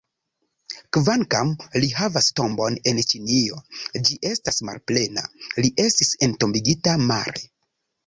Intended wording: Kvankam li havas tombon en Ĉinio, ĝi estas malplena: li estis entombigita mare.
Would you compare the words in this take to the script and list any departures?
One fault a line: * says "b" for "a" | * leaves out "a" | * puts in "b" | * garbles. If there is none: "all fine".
all fine